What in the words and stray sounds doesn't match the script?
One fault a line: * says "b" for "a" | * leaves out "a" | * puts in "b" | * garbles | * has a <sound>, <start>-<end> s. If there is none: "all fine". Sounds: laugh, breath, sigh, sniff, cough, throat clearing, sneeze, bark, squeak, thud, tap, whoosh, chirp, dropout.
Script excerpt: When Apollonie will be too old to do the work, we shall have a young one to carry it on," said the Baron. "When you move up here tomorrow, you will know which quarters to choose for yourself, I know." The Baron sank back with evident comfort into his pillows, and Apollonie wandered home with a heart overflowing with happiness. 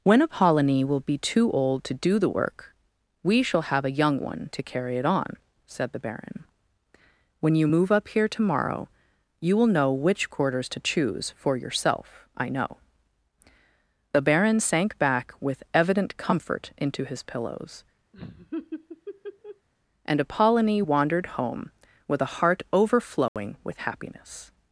* has a laugh, 18.1-19.7 s
* has a dropout, 23.3-23.4 s